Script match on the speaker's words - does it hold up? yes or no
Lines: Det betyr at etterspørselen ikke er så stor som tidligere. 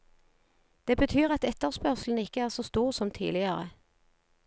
yes